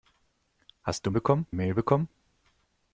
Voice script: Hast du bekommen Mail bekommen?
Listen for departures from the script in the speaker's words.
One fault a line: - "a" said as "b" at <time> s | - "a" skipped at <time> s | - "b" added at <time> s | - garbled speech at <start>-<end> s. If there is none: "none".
none